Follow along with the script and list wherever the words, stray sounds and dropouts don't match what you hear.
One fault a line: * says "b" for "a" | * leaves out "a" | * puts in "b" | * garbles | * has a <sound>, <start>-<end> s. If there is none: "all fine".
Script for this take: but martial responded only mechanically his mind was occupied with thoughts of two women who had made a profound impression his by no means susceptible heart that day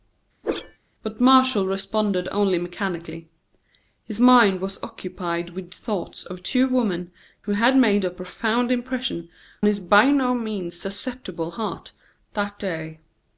* has a whoosh, 0.4-0.8 s